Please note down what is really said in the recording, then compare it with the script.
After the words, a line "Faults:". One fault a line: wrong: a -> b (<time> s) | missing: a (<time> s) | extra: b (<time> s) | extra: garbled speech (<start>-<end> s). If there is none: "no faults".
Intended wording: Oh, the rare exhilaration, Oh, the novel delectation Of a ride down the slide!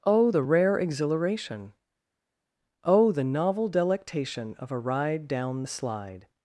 Oh, the rare exhilaration, Oh, the novel delectation Of a ride down the slide!
Faults:
no faults